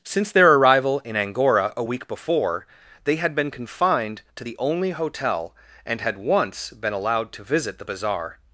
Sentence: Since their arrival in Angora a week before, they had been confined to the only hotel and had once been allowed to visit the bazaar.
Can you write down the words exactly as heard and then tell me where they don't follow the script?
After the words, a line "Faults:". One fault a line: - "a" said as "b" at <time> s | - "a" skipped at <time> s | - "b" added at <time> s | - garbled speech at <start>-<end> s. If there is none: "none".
Since their arrival in Angora a week before, they had been confined to the only hotel and had once been allowed to visit the bazaar.
Faults:
none